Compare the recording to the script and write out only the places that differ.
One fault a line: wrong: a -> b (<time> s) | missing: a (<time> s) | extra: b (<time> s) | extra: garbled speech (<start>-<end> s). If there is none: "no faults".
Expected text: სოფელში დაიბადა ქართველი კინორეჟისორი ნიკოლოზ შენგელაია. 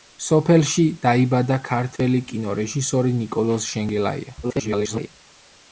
extra: garbled speech (4.4-5.1 s)